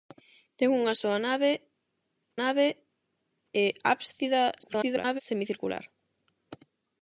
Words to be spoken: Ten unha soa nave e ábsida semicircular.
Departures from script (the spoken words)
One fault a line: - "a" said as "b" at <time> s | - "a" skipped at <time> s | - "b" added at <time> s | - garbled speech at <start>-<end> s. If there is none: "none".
- "nave" added at 2.4 s
- garbled speech at 4.6-5.2 s